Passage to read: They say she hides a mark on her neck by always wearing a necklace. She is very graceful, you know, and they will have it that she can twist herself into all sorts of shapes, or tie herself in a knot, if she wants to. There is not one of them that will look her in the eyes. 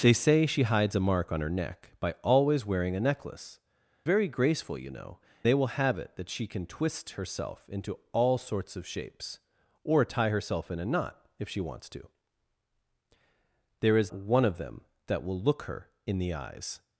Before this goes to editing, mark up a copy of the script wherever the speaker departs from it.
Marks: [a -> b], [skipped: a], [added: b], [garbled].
They say she hides a mark on her neck by always wearing a necklace. [skipped: She is] very graceful, you know, [skipped: and] they will have it that she can twist herself into all sorts of shapes, or tie herself in a knot, if she wants to. There is [skipped: not] one of them that will look her in the eyes.